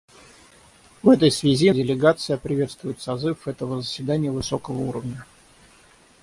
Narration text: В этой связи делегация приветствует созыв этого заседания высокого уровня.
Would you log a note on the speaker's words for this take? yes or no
no